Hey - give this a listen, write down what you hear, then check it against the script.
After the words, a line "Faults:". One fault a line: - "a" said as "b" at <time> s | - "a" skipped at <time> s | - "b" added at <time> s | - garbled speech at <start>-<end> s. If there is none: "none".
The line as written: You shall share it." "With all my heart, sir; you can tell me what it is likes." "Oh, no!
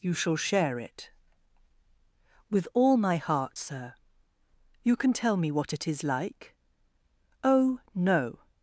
You shall share it." "With all my heart, sir; you can tell me what it is like." "Oh, no!
Faults:
- "likes" said as "like" at 6.0 s